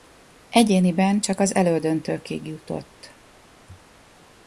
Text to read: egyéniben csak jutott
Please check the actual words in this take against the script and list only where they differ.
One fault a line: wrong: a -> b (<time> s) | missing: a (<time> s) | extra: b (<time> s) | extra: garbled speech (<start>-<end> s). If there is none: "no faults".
extra: az elődöntőkig (1.4 s)